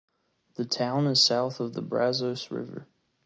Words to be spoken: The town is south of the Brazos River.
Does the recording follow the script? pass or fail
pass